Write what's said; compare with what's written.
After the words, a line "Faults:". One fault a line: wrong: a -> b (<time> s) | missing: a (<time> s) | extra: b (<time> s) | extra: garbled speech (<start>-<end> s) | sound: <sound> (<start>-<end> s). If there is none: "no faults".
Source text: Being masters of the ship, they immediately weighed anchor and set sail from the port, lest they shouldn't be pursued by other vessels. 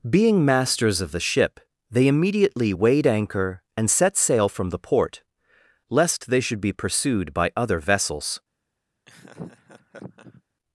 Being masters of the ship, they immediately weighed anchor and set sail from the port, lest they should be pursued by other vessels.
Faults:
wrong: shouldn't -> should (6.4 s)
sound: laugh (9.1-10.4 s)